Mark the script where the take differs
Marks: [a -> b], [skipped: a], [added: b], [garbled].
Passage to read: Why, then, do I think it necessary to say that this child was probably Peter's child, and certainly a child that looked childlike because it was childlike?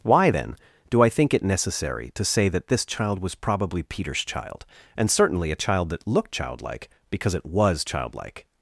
Why, then, do I think it necessary to say that this child was probably Peter's child, and certainly a child that looked childlike because it was childlike?